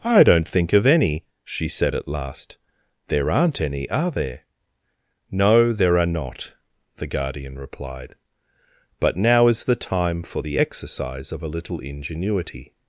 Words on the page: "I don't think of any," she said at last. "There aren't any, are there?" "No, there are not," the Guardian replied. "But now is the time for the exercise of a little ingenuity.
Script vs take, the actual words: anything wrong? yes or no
no